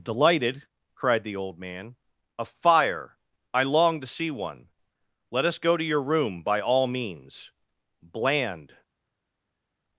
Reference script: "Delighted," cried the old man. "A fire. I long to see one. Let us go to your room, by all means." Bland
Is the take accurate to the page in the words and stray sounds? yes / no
yes